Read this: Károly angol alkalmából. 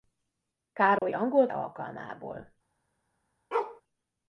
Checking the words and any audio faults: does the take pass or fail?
fail